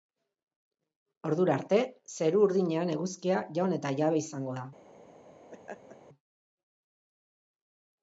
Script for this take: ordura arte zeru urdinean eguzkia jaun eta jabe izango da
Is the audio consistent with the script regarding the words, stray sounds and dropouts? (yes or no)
no